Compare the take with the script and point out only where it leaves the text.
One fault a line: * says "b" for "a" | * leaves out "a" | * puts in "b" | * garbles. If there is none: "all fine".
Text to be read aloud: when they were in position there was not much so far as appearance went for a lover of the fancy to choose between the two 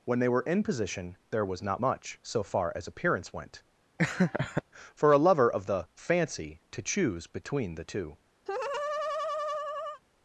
all fine